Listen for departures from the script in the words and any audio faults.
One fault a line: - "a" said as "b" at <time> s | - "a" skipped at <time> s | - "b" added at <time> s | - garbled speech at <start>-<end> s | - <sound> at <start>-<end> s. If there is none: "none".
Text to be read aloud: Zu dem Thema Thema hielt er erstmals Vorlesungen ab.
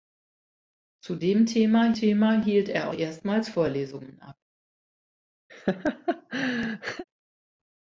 - laugh at 5.5-7.0 s